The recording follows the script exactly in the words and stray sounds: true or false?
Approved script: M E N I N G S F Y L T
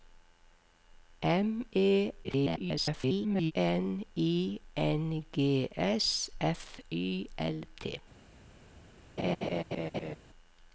false